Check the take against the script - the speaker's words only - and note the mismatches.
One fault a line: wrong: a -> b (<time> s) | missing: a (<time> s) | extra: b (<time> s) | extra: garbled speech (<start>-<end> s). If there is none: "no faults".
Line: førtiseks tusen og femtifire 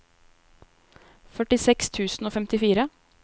no faults